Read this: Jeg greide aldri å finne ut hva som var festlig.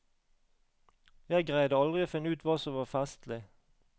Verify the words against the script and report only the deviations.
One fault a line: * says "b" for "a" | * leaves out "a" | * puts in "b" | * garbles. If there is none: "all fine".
all fine